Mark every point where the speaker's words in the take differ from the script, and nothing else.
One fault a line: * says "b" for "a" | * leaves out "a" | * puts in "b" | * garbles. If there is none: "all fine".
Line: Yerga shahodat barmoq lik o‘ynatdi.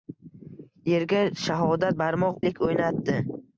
all fine